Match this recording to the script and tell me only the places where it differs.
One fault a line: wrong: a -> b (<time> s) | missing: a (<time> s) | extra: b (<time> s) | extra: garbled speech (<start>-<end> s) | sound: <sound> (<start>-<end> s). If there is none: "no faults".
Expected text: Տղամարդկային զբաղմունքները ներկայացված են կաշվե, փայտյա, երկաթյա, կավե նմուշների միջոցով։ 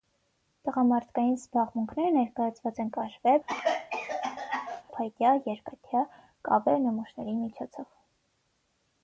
sound: cough (3.5-4.8 s)